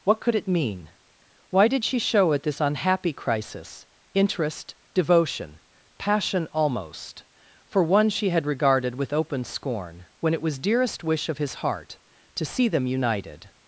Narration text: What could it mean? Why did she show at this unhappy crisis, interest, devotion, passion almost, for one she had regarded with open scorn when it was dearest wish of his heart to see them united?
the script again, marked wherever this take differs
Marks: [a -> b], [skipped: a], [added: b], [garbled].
What could it mean? Why did she show at this unhappy crisis, interest, devotion, passion almost, for one she had regarded with open scorn when it was dearest wish of his heart to see them united?